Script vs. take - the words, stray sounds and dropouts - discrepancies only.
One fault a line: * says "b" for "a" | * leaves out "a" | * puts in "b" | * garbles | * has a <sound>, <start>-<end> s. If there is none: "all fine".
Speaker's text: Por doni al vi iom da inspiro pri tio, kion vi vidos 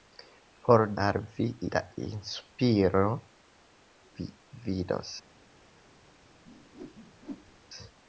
* leaves out "doni"
* leaves out "iom"
* leaves out "pri tio kion"
* has a whoosh, 6.4-7.6 s